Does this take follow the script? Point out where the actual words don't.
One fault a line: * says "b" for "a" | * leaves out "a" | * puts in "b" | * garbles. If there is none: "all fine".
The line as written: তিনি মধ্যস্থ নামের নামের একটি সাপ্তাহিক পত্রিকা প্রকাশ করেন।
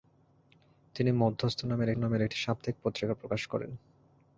all fine